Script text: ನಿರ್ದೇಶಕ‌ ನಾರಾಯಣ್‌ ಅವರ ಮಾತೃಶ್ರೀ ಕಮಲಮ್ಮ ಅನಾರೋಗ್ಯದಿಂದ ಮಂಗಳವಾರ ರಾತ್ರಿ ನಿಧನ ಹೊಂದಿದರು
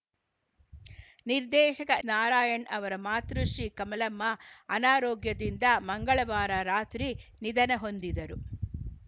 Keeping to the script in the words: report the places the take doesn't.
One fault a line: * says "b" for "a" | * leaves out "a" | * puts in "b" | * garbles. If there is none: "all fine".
all fine